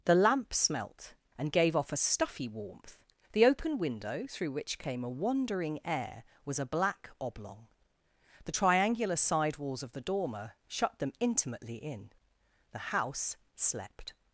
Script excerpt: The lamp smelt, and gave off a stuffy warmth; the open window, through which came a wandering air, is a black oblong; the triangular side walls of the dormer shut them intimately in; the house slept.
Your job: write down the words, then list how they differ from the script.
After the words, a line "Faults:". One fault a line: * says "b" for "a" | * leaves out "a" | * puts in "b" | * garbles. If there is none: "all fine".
The lamp smelt, and gave off a stuffy warmth; the open window, through which came a wandering air, was a black oblong; the triangular side walls of the dormer shut them intimately in; the house slept.
Faults:
* says "was" for "is"